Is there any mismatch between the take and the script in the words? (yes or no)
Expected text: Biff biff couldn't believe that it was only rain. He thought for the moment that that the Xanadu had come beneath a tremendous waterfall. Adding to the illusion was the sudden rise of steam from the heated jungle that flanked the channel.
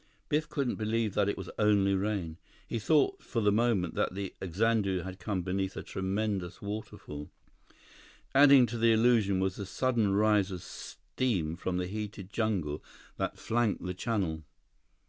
yes